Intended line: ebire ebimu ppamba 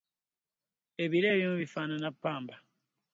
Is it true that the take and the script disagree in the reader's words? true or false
true